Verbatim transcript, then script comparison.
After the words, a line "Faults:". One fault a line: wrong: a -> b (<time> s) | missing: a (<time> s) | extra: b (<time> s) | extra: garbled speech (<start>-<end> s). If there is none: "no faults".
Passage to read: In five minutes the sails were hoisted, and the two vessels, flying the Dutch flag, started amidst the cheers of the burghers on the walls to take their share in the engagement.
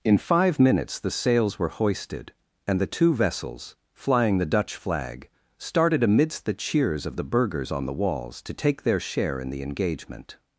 In five minutes the sails were hoisted, and the two vessels, flying the Dutch flag, started amidst the cheers of the burghers on the walls to take their share in the engagement.
Faults:
no faults